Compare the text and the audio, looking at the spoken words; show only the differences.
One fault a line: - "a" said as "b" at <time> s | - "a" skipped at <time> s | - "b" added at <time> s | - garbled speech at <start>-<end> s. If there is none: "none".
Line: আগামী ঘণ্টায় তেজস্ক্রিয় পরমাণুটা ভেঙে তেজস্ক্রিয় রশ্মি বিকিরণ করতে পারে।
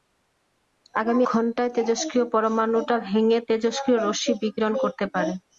none